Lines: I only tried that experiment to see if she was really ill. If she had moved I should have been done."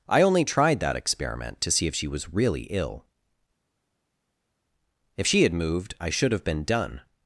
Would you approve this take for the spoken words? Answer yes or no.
yes